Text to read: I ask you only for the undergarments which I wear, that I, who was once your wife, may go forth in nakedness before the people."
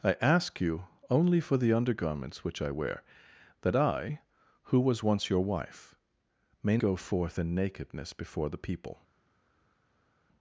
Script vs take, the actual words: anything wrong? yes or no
no